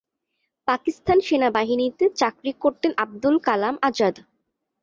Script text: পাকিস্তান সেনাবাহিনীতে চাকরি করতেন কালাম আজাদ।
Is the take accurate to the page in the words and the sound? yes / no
no